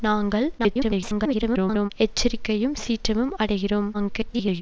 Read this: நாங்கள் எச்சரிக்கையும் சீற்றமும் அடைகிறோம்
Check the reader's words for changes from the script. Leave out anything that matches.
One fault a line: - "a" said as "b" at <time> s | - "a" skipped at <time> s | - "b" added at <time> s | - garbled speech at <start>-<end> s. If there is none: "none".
- garbled speech at 0.6-1.9 s
- garbled speech at 3.9-4.6 s